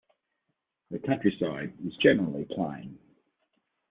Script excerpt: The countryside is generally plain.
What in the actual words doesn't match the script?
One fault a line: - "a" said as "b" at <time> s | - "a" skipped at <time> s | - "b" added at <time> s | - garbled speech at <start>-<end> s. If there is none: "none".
none